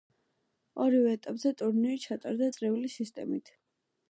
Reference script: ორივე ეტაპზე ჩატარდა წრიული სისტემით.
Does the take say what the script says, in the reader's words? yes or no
no